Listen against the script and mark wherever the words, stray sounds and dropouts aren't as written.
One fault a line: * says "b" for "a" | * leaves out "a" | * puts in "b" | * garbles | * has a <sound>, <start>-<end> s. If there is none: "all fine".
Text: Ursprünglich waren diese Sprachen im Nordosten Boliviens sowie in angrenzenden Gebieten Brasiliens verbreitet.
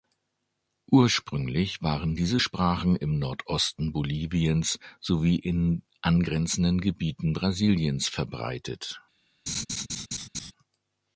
* has a laugh, 9.5-10.5 s